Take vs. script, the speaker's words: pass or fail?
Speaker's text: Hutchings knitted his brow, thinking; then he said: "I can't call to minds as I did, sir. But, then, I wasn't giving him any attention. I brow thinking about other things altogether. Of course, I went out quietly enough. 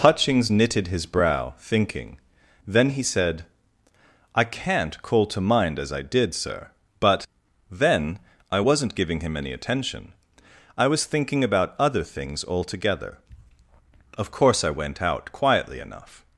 fail